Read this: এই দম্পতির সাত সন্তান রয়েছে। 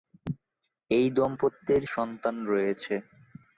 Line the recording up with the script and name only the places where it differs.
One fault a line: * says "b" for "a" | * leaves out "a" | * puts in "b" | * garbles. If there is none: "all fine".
* leaves out "সাত"